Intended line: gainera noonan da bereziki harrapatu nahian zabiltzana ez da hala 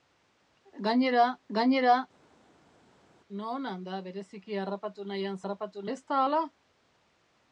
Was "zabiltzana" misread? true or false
true